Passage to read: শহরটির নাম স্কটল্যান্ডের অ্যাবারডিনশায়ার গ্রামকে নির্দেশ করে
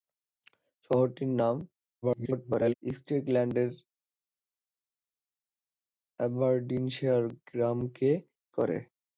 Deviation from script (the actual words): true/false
true